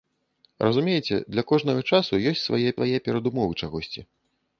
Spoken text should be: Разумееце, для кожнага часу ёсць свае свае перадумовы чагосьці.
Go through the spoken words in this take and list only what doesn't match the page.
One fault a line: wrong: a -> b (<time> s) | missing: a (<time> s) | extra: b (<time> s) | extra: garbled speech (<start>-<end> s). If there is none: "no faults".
no faults